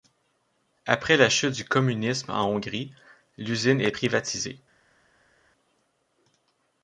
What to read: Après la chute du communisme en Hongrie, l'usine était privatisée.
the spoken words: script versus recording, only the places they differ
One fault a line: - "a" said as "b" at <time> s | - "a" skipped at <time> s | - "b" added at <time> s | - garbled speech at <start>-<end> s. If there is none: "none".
- "était" said as "est" at 3.8 s